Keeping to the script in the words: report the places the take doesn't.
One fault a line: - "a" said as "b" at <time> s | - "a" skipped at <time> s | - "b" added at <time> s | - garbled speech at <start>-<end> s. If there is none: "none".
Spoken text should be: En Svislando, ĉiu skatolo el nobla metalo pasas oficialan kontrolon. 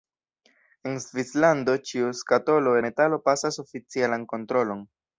- "el nobla" skipped at 2.8 s